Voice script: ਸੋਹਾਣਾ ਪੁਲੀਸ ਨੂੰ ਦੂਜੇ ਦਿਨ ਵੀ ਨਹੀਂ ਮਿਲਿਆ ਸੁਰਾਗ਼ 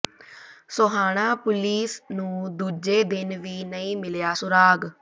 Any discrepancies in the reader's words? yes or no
no